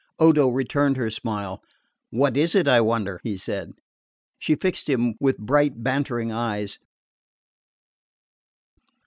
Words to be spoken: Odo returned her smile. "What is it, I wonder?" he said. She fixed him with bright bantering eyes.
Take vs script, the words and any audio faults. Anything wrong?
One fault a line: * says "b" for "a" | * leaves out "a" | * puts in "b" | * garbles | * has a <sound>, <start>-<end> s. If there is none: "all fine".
all fine